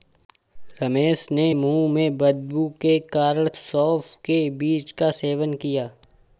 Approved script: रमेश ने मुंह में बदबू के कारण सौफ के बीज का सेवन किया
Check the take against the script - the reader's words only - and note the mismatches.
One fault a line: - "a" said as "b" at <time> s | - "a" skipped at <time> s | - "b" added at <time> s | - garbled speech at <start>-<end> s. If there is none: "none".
none